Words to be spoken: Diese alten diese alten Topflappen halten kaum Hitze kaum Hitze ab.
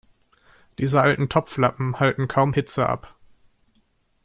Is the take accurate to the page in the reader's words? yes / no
no